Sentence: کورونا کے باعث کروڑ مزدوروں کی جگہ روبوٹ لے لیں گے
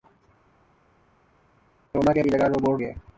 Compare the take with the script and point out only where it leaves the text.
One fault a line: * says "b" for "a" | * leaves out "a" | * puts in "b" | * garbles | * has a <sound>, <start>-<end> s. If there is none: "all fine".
* leaves out "باعث کروڑ مزدوروں"
* leaves out "لے لیں"